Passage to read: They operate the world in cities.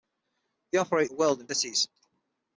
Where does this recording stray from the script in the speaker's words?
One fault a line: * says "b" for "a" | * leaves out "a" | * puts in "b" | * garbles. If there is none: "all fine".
all fine